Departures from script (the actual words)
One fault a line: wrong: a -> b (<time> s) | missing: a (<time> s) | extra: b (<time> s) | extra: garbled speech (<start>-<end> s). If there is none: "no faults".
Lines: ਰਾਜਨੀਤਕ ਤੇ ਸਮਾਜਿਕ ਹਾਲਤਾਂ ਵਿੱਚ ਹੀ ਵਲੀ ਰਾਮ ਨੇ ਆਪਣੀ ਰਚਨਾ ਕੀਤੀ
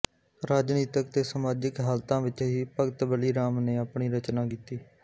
extra: ਭਗਤ (2.8 s)